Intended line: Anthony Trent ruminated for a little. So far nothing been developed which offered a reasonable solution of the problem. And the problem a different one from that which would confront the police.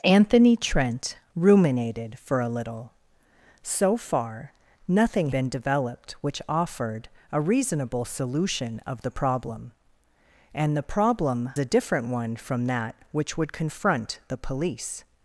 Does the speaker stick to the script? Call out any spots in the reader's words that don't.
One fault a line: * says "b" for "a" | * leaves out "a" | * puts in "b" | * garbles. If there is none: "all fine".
all fine